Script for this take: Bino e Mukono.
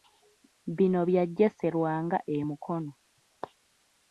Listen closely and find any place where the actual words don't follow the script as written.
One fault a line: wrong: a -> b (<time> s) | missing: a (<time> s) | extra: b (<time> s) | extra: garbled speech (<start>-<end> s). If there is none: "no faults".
extra: bya Jesse Lwanga (1.1 s)